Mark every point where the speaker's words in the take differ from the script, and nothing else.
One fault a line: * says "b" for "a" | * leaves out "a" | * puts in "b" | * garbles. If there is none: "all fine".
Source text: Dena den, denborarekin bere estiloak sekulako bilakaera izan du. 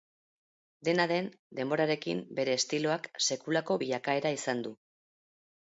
all fine